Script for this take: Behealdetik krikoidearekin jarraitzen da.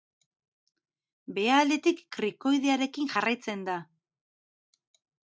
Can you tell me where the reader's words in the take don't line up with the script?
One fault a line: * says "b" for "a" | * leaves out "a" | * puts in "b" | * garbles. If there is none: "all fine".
all fine